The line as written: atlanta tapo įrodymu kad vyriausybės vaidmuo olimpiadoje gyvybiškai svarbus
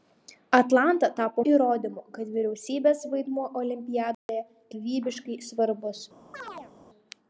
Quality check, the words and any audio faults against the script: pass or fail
fail